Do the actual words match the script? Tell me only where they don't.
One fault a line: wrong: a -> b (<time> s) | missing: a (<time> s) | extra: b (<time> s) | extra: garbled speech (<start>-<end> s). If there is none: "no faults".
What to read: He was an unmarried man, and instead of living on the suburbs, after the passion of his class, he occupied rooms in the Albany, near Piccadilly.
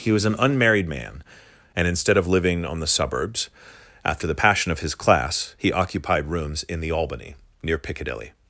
no faults